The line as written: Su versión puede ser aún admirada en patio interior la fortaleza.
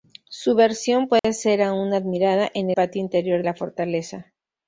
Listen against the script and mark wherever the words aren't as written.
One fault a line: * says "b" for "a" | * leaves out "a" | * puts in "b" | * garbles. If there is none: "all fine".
all fine